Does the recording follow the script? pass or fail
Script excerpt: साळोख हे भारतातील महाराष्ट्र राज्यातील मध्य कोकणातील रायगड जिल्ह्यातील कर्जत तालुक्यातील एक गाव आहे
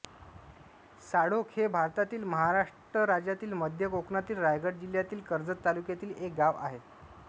pass